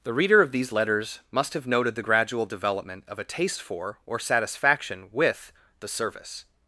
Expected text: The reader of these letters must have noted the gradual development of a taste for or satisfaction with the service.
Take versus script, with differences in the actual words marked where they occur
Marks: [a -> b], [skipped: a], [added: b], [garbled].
The reader of these letters must have noted the gradual development of a taste for or satisfaction with the service.